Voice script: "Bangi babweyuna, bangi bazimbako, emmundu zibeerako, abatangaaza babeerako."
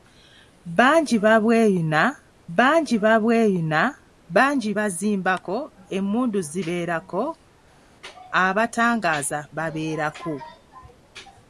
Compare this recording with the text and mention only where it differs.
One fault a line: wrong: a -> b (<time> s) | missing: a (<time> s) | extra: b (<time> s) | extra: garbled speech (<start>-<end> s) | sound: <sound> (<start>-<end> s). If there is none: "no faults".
extra: babweyuna bangi (3.0 s)